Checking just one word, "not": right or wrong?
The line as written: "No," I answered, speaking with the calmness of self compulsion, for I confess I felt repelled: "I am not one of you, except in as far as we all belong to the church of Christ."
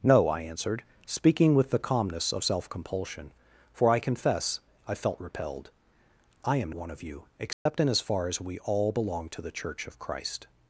wrong